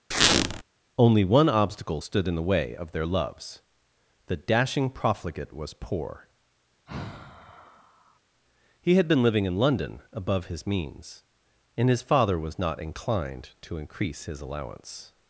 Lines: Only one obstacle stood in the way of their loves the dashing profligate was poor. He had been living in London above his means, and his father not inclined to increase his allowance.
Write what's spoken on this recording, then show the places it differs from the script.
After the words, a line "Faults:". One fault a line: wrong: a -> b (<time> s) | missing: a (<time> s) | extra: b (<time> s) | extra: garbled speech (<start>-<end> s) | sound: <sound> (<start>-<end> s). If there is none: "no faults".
Only one obstacle stood in the way of their loves the dashing profligate was poor. He had been living in London above his means, and his father was not inclined to increase his allowance.
Faults:
sound: squeak (0.1-0.6 s)
sound: sigh (6.9-8.2 s)
extra: was (12.4 s)